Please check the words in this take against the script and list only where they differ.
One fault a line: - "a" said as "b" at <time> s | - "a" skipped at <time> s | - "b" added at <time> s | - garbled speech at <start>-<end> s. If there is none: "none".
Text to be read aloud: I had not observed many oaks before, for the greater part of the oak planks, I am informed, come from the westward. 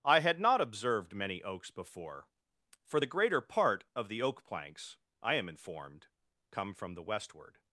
none